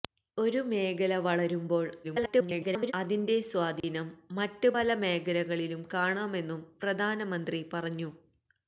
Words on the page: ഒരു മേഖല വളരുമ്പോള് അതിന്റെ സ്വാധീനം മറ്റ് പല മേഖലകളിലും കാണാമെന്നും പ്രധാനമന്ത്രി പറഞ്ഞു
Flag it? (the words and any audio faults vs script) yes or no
yes